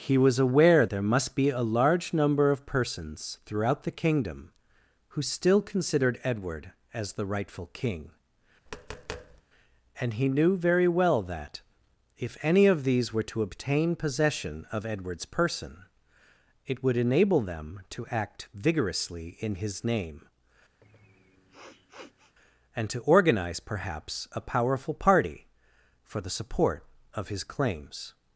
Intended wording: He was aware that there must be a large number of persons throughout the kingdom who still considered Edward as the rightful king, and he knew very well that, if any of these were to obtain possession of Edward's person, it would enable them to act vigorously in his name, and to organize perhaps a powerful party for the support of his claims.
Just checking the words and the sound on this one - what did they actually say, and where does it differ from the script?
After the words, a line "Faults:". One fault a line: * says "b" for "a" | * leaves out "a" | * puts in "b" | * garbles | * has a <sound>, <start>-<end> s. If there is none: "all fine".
He was aware there must be a large number of persons throughout the kingdom who still considered Edward as the rightful king, and he knew very well that, if any of these were to obtain possession of Edward's person, it would enable them to act vigorously in his name, and to organize perhaps a powerful party for the support of his claims.
Faults:
* leaves out "that"
* has a tap, 8.7-9.4 s
* has a sniff, 20.8-22.4 s